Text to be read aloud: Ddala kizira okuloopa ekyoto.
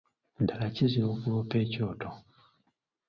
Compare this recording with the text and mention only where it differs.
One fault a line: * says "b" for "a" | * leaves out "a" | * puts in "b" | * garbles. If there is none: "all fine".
all fine